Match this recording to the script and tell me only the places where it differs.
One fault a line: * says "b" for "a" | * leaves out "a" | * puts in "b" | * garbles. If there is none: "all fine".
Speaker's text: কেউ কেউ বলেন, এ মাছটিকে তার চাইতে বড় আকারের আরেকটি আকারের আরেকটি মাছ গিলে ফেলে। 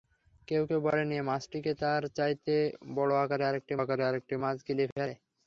all fine